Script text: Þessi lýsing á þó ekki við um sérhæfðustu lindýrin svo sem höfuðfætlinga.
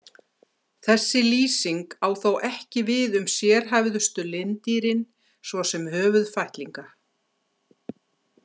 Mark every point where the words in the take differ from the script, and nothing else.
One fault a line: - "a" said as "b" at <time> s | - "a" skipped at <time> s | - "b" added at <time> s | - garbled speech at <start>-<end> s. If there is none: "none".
none